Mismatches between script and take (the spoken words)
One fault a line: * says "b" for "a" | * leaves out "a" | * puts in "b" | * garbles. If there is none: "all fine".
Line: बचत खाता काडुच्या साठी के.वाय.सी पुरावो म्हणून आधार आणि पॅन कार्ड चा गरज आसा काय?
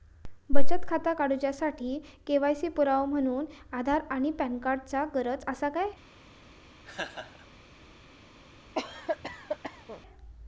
all fine